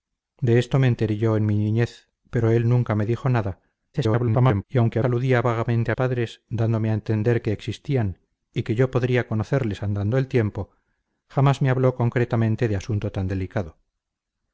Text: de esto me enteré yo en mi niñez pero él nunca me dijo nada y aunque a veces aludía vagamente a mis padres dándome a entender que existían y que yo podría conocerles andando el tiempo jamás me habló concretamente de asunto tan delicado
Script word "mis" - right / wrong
wrong